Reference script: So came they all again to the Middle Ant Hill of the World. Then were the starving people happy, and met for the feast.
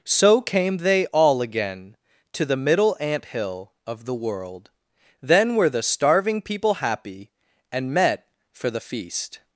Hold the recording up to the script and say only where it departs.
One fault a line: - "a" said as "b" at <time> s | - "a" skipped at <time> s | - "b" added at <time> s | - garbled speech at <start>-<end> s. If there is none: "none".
none